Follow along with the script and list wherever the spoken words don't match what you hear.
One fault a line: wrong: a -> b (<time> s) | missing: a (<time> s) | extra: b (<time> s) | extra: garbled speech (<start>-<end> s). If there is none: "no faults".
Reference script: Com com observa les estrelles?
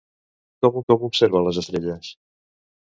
no faults